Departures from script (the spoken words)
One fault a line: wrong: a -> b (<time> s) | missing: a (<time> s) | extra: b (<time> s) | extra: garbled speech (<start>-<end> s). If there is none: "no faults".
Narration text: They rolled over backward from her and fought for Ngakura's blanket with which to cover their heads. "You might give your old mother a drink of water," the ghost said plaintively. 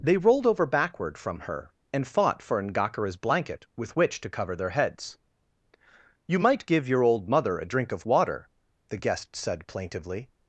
wrong: ghost -> guest (9.0 s)